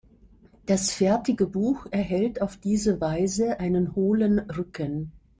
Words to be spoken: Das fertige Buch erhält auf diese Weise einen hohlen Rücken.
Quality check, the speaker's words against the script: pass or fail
pass